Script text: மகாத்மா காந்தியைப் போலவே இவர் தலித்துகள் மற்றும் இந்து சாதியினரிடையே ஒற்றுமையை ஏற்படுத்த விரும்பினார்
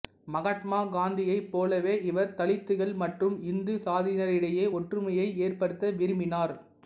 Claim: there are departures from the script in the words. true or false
false